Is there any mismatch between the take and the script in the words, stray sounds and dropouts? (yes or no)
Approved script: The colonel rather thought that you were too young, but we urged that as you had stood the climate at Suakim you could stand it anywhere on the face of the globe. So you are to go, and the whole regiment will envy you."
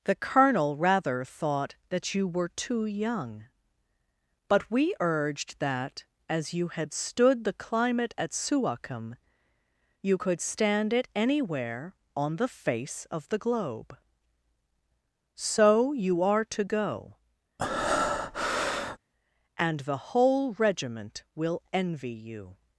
yes